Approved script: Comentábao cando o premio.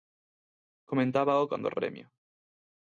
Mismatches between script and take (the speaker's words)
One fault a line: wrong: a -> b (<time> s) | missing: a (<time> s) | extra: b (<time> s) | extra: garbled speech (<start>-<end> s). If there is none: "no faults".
no faults